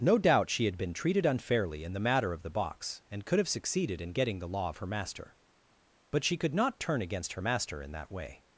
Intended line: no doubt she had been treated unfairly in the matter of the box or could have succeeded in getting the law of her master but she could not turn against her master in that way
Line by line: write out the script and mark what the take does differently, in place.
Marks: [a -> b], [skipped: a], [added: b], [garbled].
no doubt she had been treated unfairly in the matter of the box [or -> and] could have succeeded in getting the law of her master but she could not turn against her master in that way